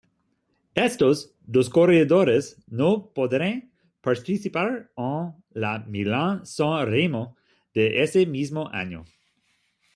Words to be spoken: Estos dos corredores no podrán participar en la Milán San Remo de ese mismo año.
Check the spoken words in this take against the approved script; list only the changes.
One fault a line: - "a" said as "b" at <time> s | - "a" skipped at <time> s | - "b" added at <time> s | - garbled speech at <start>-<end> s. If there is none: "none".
none